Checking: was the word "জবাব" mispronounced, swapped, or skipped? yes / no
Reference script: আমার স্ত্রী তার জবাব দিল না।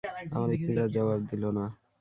no